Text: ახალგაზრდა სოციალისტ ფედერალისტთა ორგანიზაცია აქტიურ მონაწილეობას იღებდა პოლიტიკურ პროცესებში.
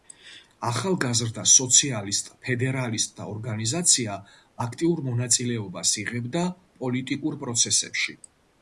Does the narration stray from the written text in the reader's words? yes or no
no